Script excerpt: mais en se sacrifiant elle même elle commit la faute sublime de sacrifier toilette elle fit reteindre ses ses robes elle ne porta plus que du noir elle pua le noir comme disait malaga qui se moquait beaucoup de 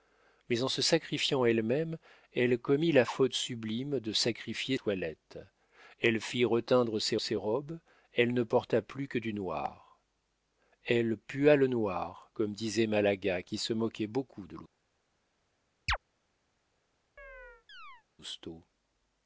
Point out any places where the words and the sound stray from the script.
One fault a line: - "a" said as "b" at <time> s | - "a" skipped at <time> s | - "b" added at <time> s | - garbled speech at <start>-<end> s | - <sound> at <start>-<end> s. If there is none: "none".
- chirp at 15.9-16.0 s
- chirp at 17.2-18.0 s